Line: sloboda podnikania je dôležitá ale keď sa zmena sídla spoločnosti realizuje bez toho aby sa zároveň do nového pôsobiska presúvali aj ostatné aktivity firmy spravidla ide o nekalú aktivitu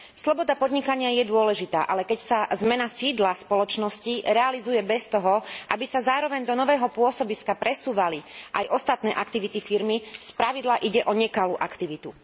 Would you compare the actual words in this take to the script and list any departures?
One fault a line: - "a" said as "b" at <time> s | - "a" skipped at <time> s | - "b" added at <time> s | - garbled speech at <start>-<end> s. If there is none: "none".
none